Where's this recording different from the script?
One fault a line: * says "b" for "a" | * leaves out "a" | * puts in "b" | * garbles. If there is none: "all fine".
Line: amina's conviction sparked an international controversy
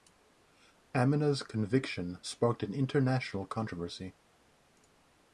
all fine